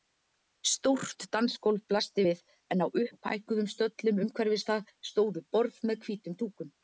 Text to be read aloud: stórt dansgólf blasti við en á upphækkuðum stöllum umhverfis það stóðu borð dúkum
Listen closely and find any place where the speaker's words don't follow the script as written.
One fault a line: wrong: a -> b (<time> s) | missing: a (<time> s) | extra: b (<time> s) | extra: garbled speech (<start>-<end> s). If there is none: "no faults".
extra: með hvítum (5.9 s)